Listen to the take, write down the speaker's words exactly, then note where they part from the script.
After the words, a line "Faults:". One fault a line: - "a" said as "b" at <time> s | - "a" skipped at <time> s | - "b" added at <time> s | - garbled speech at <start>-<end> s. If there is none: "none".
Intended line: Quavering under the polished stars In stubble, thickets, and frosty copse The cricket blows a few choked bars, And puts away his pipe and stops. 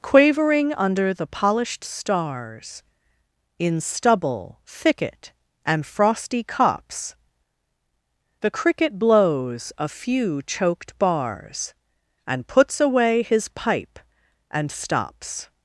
Quavering under the polished stars In stubble, thicket, and frosty copse The cricket blows a few choked bars, And puts away his pipe and stops.
Faults:
- "thickets" said as "thicket" at 4.7 s